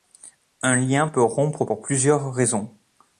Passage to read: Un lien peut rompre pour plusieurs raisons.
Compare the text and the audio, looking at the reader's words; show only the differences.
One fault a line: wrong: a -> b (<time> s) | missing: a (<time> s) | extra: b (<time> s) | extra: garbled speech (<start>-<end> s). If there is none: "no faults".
no faults